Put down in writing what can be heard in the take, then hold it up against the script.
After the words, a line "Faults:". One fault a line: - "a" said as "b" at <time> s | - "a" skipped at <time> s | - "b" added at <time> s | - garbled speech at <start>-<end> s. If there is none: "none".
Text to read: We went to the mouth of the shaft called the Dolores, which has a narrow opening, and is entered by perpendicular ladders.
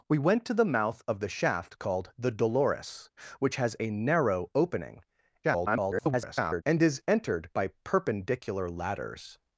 We went to the mouth of the shaft called the Dolores, which has a narrow opening, [garbled] and is entered by perpendicular ladders.
Faults:
- garbled speech at 5.4-6.6 s